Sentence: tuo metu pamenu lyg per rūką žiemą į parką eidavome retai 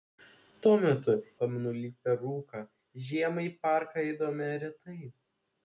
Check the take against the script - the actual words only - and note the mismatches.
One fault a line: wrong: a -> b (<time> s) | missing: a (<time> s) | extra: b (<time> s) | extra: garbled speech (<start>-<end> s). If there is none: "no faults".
no faults